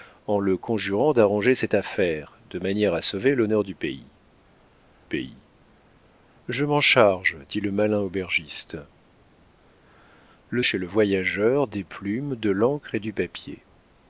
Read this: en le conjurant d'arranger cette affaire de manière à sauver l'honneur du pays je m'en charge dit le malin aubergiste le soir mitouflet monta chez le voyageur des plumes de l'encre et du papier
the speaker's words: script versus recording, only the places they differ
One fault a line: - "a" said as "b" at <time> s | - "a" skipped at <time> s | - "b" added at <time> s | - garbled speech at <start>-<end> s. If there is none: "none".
- "pays" added at 5.0 s
- "soir mitouflet monta" skipped at 10.6 s